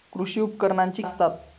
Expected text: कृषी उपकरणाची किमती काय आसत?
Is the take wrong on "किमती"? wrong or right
wrong